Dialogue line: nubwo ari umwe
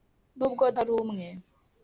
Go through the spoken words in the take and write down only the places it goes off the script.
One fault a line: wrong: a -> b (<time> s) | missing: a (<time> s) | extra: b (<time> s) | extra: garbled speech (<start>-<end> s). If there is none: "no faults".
no faults